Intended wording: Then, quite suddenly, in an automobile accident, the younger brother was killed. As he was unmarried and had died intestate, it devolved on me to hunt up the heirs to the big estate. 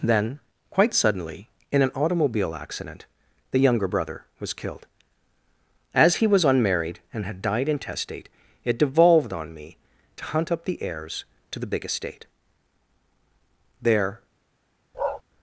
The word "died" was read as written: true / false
true